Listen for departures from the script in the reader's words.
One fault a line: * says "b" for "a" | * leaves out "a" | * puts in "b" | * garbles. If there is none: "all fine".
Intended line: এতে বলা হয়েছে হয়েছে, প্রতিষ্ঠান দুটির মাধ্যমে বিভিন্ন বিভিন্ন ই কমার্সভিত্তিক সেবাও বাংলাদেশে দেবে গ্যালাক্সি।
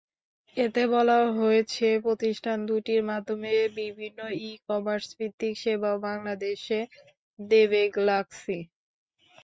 * leaves out "হয়েছে"
* leaves out "বিভিন্ন"